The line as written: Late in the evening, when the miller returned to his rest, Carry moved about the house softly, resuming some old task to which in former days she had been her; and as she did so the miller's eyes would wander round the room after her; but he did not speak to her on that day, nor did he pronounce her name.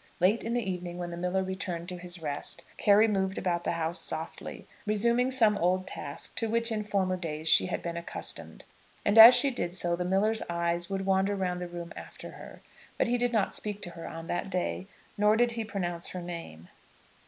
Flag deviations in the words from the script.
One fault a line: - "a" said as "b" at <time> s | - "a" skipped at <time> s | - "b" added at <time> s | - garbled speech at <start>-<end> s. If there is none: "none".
- "her" said as "accustomed" at 8.0 s